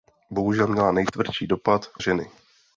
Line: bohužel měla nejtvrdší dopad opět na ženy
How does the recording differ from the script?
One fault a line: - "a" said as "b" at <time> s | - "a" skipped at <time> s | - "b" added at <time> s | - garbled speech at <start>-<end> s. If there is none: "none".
- "opět na" skipped at 1.8 s